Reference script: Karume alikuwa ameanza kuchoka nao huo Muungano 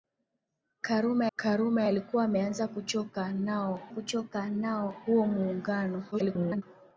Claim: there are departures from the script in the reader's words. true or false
true